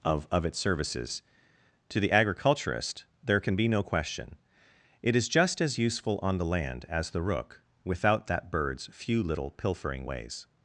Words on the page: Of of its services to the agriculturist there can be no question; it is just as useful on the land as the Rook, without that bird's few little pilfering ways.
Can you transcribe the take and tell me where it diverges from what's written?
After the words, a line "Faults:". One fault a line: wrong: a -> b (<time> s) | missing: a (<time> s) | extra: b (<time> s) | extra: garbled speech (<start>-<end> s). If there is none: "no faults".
Of of its services to the agriculturist there can be no question; it is just as useful on the land as the Rook, without that bird's few little pilfering ways.
Faults:
no faults